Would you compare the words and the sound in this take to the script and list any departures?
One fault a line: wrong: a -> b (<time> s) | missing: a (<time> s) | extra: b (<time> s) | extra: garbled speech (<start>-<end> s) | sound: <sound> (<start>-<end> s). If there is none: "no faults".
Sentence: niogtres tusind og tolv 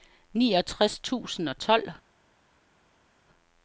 no faults